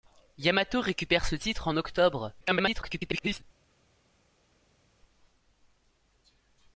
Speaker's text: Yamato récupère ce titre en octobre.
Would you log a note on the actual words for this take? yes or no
yes